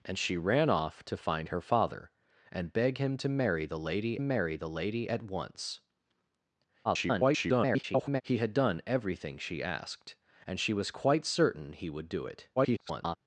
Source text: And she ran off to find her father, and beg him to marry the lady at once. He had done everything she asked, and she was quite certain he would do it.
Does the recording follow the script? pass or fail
fail